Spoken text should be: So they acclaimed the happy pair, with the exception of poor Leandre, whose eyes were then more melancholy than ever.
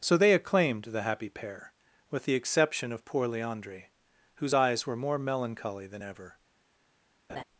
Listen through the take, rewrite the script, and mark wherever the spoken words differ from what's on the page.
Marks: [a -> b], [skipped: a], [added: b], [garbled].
So they acclaimed the happy pair, with the exception of poor Leandre, whose eyes were [skipped: then] more melancholy than ever.